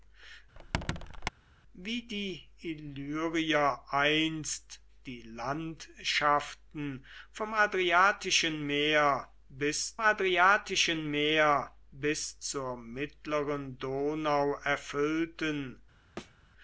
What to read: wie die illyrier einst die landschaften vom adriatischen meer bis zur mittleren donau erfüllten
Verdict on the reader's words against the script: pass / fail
fail